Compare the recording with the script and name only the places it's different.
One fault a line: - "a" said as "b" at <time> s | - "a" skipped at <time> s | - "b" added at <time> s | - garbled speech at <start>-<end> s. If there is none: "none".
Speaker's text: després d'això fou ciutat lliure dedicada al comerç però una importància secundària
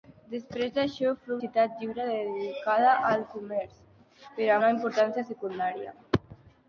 none